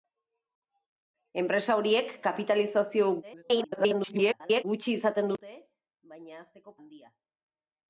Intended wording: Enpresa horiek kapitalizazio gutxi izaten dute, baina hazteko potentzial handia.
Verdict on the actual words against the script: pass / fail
fail